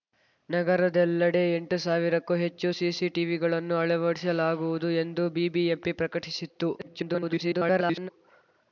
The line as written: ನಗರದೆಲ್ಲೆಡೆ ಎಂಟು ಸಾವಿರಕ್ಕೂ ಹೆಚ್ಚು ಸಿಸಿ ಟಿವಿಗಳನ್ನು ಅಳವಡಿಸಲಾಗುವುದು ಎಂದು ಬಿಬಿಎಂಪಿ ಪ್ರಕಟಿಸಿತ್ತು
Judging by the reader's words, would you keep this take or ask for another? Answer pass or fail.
fail